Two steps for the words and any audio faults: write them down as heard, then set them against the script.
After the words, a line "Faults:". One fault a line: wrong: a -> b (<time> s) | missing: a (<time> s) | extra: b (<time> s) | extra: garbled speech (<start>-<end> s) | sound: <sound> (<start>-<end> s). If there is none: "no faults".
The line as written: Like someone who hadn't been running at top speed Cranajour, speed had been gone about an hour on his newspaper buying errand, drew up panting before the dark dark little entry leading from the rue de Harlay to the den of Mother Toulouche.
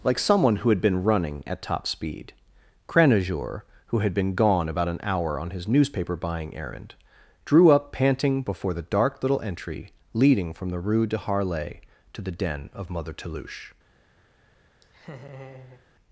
Like someone who had been running at top speed Cranajour, who had been gone about an hour on his newspaper buying errand, drew up panting before the dark little entry leading from the rue de Harlay to the den of Mother Toulouche.
Faults:
wrong: hadn't -> had (0.7 s)
wrong: speed -> who (3.9 s)
missing: dark (9.2 s)
sound: laugh (14.8-15.9 s)